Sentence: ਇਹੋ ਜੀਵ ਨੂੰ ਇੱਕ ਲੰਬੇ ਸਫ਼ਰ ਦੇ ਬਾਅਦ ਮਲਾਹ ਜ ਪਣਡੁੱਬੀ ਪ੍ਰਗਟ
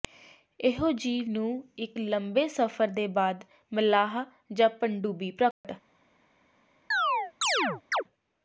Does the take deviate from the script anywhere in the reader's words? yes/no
no